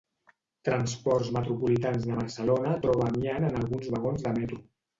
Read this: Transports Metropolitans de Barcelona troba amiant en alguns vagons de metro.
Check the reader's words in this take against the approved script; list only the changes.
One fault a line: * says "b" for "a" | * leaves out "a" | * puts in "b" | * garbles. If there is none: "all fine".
all fine